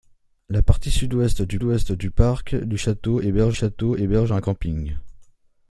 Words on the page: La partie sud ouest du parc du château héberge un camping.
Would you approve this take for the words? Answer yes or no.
no